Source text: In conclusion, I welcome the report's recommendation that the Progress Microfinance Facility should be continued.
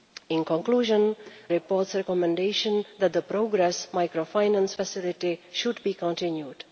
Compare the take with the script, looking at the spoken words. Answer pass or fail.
fail